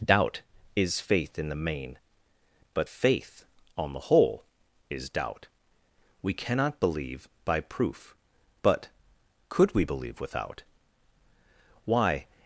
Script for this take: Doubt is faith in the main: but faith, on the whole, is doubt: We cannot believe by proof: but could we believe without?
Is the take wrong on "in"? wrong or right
right